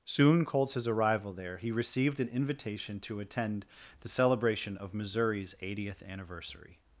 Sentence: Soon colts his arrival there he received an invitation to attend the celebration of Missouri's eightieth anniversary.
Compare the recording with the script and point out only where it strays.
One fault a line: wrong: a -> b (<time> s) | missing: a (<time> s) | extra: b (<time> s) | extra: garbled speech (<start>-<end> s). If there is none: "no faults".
no faults